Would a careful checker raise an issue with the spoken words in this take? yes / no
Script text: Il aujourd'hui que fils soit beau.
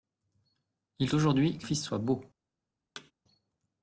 no